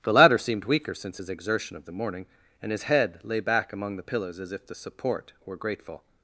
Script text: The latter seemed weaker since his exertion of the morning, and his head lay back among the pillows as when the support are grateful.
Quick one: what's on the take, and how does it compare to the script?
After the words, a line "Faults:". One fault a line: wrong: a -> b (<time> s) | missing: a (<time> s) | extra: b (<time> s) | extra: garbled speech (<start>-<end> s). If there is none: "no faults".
The latter seemed weaker since his exertion of the morning, and his head lay back among the pillows as if the support were grateful.
Faults:
wrong: when -> if (4.5 s)
wrong: are -> were (5.4 s)